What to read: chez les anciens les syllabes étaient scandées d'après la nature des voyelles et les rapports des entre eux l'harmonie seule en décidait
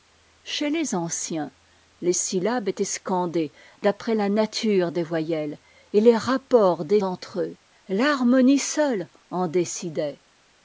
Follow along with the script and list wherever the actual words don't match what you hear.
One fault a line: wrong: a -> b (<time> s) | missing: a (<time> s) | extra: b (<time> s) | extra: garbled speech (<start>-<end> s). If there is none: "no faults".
no faults